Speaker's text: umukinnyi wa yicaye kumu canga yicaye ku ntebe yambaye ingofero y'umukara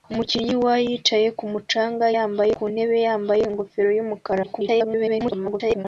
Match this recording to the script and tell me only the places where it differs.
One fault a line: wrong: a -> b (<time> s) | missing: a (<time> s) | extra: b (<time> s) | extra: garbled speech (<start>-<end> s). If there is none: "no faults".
wrong: yicaye -> yambaye (2.2 s)
extra: garbled speech (4.4-5.9 s)